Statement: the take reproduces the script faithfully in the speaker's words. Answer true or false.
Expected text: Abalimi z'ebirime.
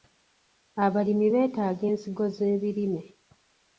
false